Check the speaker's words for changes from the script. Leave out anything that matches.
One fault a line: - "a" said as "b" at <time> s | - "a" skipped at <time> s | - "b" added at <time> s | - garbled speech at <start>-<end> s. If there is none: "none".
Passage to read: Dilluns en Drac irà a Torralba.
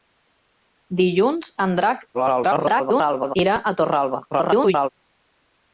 - garbled speech at 2.1-3.4 s
- garbled speech at 4.3-4.9 s